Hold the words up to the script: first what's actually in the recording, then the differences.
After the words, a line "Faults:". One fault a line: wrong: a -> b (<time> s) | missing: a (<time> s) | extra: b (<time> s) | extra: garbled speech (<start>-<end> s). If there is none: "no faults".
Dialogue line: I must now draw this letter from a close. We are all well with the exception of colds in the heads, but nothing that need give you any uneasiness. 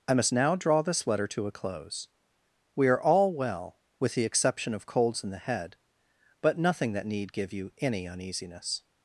I must now draw this letter to a close. We are all well with the exception of colds in the head, but nothing that need give you any uneasiness.
Faults:
wrong: from -> to (1.3 s)
wrong: heads -> head (5.4 s)